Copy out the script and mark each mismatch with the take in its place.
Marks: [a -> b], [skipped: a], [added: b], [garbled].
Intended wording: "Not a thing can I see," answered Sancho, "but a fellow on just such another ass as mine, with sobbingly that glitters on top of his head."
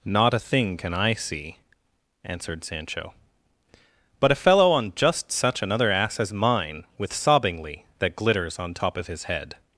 "Not a thing can I see," answered Sancho, "but a fellow on just such another ass as mine, with sobbingly that glitters on top of his head."